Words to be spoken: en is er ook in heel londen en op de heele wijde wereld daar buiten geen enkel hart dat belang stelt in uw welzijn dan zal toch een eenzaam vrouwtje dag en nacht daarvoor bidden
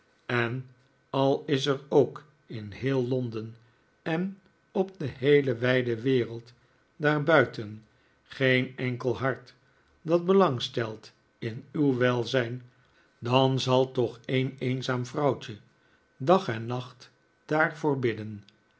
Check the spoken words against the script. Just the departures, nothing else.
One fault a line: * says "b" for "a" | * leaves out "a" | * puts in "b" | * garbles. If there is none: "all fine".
* puts in "al"